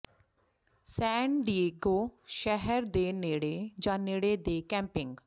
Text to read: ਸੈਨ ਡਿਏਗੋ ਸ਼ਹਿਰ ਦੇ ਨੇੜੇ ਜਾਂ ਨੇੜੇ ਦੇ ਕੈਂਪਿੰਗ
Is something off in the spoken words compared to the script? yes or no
no